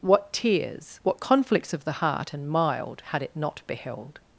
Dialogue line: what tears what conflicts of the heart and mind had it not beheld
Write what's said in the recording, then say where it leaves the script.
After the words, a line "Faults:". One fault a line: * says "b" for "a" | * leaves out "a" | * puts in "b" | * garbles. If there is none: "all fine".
what tears what conflicts of the heart and mild had it not beheld
Faults:
* says "mild" for "mind"